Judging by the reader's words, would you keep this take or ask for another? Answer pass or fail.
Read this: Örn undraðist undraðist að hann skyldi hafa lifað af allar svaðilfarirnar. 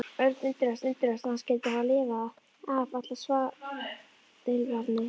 pass